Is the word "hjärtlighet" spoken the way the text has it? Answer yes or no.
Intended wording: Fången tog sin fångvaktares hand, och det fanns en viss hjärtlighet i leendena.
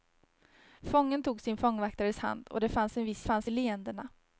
no